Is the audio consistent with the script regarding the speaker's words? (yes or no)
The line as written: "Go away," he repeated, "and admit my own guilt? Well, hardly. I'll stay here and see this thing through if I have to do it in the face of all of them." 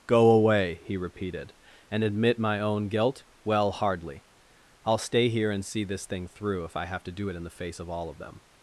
yes